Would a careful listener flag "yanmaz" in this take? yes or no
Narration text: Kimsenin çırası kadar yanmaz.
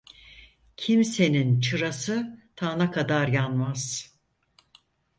no